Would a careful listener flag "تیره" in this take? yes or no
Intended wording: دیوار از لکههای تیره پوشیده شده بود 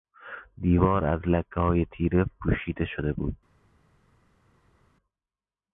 no